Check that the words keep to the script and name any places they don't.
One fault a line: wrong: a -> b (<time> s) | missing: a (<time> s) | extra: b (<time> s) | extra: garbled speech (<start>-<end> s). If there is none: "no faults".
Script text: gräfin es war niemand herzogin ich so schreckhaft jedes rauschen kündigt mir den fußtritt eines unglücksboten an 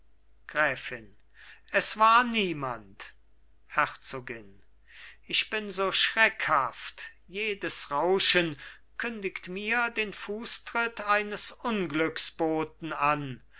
extra: bin (5.5 s)